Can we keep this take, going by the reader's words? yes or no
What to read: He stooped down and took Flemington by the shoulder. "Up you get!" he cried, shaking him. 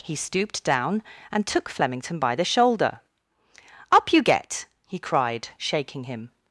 yes